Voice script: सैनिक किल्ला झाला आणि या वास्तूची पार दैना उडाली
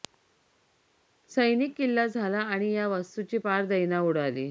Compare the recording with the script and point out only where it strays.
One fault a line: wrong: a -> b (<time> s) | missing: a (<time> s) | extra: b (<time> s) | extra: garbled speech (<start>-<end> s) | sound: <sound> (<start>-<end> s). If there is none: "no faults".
no faults